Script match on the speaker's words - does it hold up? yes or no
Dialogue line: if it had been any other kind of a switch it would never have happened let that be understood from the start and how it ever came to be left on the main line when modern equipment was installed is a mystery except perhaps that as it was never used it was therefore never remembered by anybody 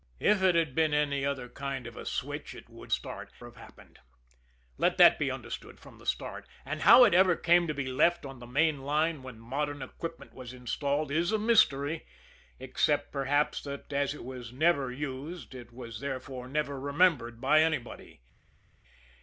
no